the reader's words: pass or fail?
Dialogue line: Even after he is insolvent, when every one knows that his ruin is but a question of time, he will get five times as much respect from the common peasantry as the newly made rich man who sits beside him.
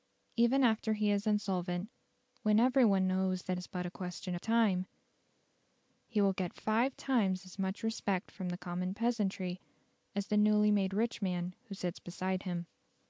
fail